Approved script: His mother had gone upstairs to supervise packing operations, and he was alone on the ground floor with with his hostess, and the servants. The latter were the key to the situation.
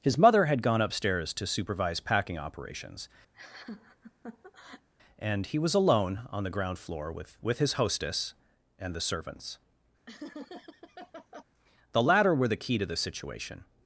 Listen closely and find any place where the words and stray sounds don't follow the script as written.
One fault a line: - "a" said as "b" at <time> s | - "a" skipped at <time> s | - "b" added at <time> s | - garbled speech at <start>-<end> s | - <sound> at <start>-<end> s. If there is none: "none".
- laugh at 3.3-4.9 s
- laugh at 10.1-11.4 s